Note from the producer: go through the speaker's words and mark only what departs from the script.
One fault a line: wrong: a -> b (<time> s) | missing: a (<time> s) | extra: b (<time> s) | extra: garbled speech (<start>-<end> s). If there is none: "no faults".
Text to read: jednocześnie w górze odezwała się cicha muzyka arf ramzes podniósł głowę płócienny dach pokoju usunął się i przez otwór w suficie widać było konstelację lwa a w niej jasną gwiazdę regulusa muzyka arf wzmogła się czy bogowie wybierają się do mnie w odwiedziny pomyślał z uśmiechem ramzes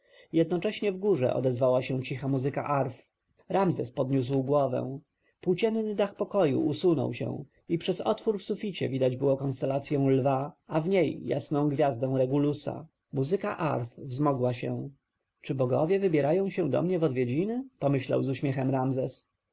no faults